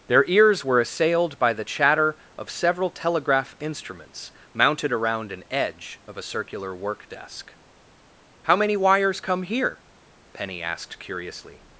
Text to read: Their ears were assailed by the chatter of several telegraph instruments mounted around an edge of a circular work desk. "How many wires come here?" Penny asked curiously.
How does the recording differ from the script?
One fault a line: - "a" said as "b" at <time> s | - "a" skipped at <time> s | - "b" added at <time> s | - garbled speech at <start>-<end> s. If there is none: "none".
none